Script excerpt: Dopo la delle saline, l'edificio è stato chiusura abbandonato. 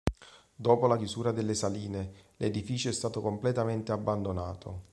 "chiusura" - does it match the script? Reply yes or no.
no